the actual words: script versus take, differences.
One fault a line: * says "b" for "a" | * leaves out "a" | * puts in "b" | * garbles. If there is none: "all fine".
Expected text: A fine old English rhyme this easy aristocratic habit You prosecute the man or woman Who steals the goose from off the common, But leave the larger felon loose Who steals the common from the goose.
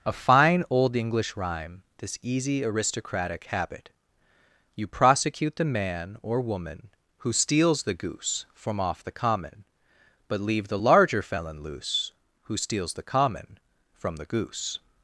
all fine